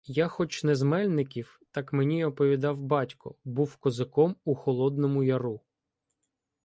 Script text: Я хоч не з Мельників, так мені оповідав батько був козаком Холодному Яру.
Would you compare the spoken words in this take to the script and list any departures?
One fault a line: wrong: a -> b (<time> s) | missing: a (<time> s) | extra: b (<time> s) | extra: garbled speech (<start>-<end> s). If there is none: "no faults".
extra: у (4.4 s)